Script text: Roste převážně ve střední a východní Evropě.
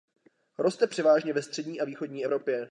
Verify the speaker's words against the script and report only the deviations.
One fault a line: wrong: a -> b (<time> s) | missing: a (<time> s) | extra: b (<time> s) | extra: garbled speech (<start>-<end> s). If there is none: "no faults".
no faults